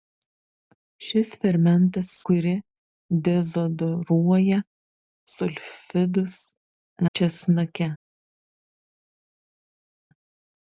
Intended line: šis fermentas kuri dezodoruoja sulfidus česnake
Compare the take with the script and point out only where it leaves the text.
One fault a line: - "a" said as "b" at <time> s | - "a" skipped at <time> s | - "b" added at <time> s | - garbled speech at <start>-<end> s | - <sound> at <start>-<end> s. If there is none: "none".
none